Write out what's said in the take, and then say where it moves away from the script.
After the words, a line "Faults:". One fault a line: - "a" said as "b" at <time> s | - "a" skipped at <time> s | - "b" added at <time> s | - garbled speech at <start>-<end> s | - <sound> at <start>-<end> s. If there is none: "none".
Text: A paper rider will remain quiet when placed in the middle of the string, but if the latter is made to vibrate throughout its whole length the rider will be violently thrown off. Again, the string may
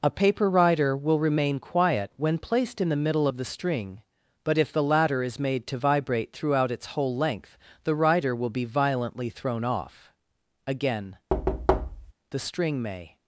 A paper rider will remain quiet when placed in the middle of the string, but if the latter is made to vibrate throughout its whole length the rider will be violently thrown off. Again, the string may
Faults:
- thud at 11.3-12.1 s